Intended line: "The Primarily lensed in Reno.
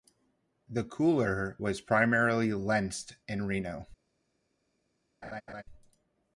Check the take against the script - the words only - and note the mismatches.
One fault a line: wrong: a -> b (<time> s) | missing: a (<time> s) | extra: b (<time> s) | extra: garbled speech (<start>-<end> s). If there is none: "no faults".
extra: Cooler was (0.8 s)